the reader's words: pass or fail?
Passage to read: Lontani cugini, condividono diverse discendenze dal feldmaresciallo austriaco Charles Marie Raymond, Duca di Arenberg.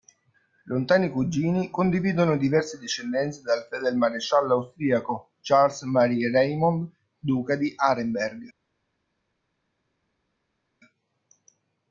pass